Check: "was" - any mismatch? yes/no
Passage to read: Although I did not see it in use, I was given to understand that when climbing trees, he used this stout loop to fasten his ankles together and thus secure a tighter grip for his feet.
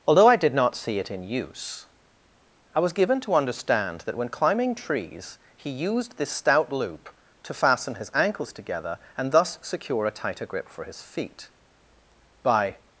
no